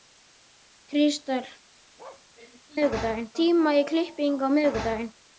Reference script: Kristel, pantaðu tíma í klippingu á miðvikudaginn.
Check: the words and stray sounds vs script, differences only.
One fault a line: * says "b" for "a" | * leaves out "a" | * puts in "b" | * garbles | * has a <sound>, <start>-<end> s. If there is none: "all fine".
* has a bark, 2.0-2.3 s
* says "miðvikudaginn" for "pantaðu"